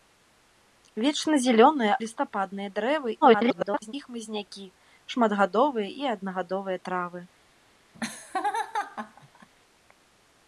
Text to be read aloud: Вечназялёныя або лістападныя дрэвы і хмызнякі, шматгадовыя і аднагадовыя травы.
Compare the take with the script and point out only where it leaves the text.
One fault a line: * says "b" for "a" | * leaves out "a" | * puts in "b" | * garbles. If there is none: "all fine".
* leaves out "або"
* garbles